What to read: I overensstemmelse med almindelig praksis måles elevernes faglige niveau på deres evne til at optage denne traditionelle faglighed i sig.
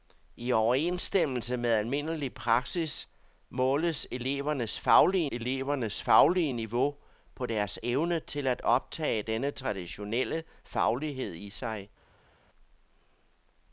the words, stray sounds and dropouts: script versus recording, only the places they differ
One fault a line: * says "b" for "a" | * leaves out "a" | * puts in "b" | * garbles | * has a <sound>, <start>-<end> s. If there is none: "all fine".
* puts in "elevernes faglige"